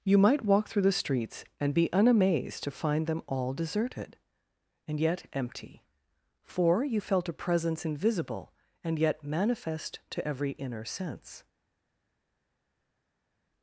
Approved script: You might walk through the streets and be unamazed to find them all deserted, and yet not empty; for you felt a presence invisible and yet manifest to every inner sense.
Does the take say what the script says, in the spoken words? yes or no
no